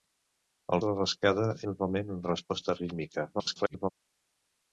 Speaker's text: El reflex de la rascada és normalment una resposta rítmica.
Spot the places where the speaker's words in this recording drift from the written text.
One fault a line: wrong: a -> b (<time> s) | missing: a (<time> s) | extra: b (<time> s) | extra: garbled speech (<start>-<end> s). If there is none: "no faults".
missing: reflex (0.8 s)
missing: és (1.5 s)
extra: garbled speech (3.3-3.9 s)